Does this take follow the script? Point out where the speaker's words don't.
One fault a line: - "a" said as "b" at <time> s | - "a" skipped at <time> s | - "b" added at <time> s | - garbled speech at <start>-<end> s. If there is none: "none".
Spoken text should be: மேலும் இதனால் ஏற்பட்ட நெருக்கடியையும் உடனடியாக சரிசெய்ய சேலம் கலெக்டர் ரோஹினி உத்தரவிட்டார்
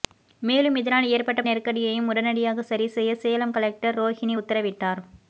none